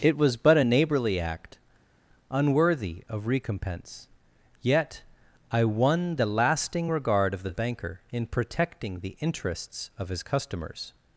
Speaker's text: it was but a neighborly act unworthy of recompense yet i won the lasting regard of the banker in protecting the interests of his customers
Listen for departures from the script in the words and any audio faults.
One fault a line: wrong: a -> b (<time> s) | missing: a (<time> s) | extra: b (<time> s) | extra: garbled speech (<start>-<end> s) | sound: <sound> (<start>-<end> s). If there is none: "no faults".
no faults